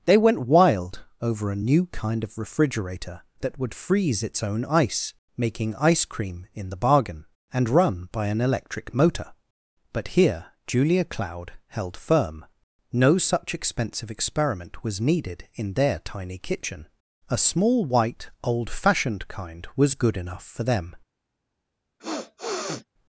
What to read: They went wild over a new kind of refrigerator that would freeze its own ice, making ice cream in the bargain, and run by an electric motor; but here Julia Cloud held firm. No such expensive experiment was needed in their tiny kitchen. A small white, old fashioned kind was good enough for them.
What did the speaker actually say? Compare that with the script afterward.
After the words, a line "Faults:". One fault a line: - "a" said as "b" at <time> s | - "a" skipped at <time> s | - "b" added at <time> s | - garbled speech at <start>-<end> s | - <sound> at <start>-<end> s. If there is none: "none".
They went wild over a new kind of refrigerator that would freeze its own ice, making ice cream in the bargain, and run by an electric motor; but here Julia Cloud held firm. No such expensive experiment was needed in their tiny kitchen. A small white, old fashioned kind was good enough for them.
Faults:
- sniff at 22.0-22.8 s